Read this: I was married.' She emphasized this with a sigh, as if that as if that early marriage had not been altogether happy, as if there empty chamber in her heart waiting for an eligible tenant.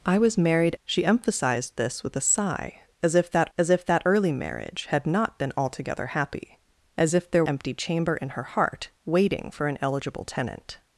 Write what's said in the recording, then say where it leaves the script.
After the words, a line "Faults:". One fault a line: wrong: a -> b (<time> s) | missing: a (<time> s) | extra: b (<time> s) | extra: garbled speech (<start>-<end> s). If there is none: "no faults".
I was married.' She emphasized this with a sigh, as if that as if that early marriage had not been altogether happy, as if there empty chamber in her heart waiting for an eligible tenant.
Faults:
no faults